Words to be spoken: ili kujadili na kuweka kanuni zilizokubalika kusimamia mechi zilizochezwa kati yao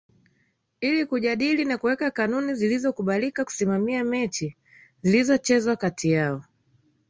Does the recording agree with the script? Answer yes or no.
yes